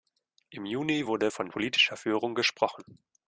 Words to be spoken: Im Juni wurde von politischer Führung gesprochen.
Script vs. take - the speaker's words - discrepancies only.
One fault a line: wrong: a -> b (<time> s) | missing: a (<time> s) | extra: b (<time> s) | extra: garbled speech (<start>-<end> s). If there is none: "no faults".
no faults